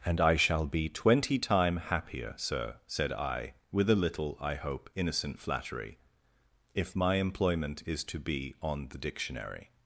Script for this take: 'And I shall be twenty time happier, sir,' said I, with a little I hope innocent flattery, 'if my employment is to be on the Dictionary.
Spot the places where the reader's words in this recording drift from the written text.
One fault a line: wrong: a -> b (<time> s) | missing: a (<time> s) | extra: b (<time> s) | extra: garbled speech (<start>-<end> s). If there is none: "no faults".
no faults